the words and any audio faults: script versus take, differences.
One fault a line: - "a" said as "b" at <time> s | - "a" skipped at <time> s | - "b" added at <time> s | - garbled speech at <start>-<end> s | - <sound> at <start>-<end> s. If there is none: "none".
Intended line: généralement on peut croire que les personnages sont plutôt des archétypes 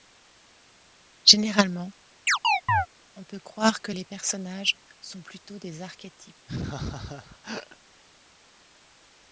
- chirp at 2.3-2.9 s
- laugh at 6.5-7.8 s